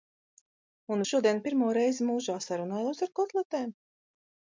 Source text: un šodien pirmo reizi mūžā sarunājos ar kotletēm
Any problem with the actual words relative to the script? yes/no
no